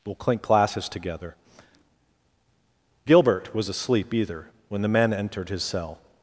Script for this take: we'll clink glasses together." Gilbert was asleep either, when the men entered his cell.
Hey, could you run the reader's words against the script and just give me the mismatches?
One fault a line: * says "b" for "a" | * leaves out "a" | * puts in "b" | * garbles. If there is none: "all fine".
all fine